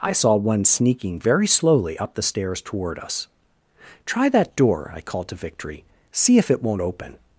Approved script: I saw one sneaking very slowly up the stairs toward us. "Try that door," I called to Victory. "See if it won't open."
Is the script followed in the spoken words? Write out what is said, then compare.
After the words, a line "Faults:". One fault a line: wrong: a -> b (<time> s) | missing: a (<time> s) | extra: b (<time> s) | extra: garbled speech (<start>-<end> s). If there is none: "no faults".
I saw one sneaking very slowly up the stairs toward us. "Try that door," I called to Victory. "See if it won't open."
Faults:
no faults